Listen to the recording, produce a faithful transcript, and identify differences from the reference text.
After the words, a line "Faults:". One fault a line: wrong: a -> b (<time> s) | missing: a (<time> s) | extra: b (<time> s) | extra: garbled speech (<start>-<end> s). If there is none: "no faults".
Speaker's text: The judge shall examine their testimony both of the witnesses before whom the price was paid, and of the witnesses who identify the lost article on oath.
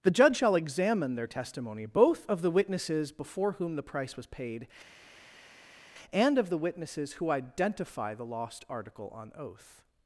The judge shall examine their testimony both of the witnesses before whom the price was paid, and of the witnesses who identify the lost article on oath.
Faults:
no faults